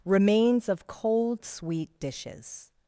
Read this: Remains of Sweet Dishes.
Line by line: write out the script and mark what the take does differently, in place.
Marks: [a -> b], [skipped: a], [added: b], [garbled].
Remains of [added: Cold] Sweet Dishes.